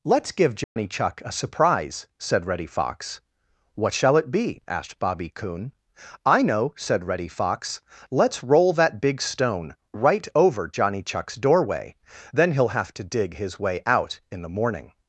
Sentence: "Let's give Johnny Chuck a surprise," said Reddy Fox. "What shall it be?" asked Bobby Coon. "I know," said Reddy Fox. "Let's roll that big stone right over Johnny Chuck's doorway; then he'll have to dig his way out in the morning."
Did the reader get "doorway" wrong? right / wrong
right